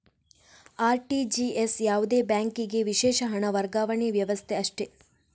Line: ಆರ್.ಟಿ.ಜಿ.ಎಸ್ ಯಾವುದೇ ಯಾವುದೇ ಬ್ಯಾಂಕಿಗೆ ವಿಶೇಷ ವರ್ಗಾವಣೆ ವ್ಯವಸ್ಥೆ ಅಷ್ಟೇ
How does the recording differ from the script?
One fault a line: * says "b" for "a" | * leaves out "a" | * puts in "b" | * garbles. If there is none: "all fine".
* leaves out "ಯಾವುದೇ"
* puts in "ಹಣ"